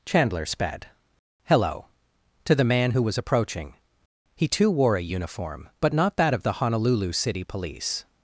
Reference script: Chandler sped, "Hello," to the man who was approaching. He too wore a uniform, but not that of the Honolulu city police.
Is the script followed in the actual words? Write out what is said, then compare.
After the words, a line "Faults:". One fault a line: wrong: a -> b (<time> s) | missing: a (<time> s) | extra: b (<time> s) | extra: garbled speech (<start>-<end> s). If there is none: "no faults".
Chandler sped, "Hello," to the man who was approaching. He too wore a uniform, but not that of the Honolulu city police.
Faults:
no faults